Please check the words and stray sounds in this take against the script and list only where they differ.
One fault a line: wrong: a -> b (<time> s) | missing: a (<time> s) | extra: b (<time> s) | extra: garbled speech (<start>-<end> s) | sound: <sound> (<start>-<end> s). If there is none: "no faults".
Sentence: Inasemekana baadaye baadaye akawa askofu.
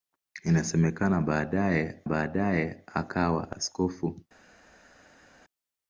no faults